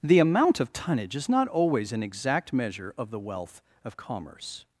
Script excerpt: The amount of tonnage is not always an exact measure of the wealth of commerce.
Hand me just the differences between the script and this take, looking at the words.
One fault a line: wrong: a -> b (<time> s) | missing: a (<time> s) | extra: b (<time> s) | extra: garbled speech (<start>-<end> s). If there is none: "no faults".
no faults